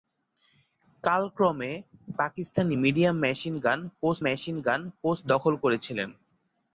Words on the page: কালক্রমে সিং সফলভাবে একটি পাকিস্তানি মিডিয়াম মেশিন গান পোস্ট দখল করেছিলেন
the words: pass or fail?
fail